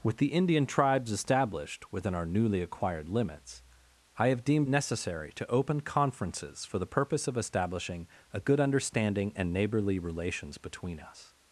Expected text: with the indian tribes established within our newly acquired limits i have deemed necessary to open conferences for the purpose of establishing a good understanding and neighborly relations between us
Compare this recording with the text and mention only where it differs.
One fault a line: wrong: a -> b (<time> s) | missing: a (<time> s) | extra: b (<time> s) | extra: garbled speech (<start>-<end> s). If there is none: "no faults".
no faults